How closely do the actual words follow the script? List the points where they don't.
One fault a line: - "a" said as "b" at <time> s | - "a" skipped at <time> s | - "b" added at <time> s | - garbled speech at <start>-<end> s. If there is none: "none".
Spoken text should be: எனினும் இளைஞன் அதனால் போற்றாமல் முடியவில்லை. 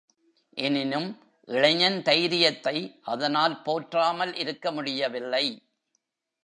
- "தைரியத்தை" added at 2.0 s
- "இருக்க" added at 4.3 s